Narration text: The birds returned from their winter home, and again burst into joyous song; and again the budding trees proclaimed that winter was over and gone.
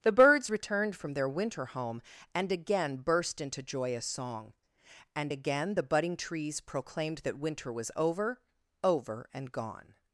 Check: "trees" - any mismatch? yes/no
no